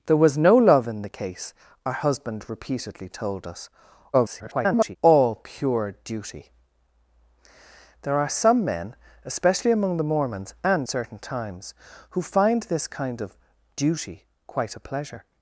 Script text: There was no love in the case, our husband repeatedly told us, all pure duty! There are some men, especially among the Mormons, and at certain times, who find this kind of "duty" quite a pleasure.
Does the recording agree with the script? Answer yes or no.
no